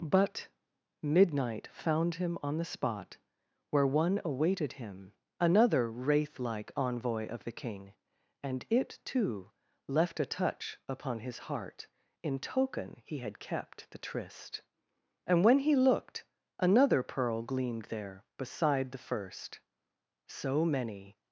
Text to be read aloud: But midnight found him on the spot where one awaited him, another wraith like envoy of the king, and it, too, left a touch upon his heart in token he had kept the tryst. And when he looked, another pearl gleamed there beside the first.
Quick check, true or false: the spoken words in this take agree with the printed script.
false